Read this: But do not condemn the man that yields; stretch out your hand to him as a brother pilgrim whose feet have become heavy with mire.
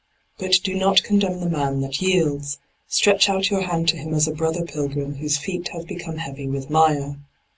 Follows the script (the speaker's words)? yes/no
yes